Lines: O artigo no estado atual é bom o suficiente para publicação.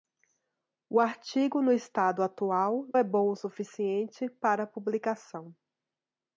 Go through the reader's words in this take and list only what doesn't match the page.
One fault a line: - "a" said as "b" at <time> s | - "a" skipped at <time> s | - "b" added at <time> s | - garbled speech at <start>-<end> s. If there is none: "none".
none